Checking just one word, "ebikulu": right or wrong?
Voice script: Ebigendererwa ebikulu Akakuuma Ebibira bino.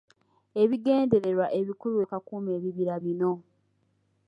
right